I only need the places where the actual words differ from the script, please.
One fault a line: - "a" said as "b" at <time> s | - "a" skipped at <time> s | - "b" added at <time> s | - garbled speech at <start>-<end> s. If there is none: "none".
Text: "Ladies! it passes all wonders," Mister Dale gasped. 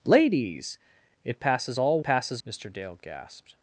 - "wonders" said as "passes" at 2.0 s